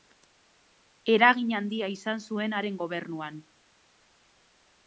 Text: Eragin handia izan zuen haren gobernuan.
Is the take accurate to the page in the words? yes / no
yes